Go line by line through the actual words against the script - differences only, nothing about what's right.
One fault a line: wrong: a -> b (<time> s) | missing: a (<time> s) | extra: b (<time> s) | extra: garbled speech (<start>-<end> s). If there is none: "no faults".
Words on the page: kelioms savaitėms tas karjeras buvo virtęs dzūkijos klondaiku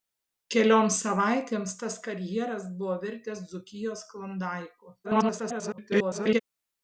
extra: garbled speech (5.0-6.4 s)